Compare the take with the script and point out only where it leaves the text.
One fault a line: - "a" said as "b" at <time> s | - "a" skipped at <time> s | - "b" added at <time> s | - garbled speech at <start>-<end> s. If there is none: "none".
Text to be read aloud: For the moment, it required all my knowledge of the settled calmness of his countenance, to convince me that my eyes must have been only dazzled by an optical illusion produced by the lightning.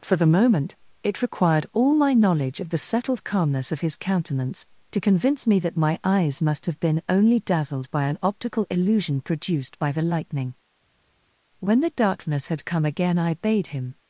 - "When the darkness had come again I bade him" added at 11.6 s